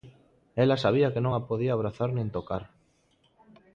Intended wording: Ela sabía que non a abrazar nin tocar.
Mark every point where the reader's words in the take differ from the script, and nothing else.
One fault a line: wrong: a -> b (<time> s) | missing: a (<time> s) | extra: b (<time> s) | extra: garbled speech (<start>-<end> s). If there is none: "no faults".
extra: podía (1.5 s)